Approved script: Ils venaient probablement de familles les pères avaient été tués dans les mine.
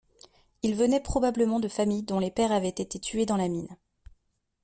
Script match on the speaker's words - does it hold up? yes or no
no